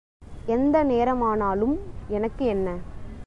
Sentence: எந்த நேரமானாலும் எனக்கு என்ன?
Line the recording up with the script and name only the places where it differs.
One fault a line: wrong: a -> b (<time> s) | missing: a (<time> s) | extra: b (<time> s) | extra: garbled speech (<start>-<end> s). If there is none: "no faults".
no faults